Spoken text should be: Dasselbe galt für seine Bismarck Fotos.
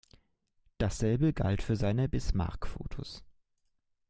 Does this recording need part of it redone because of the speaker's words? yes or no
no